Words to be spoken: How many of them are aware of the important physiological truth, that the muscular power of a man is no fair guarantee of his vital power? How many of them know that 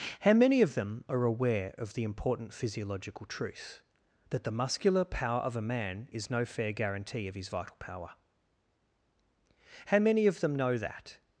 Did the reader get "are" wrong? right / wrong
right